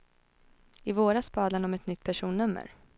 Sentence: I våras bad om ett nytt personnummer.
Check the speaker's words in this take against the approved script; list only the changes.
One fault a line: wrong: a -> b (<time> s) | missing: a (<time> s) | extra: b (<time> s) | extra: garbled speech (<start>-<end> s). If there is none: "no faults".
extra: han (1.5 s)